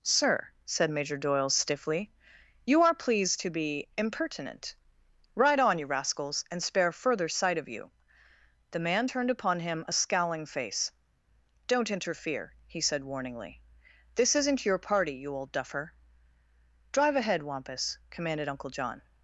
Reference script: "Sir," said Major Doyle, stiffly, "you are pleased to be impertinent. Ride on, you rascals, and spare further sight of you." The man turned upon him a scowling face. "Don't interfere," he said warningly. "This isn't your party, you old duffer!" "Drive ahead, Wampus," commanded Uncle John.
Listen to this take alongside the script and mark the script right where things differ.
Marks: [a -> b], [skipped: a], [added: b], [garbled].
"Sir," said Major Doyle, stiffly, "you are pleased to be impertinent. Ride on, you rascals, and spare further sight of you." The man turned upon him a scowling face. "Don't interfere," he said warningly. "This isn't your party, you old duffer!" "Drive ahead, Wampus," commanded Uncle John.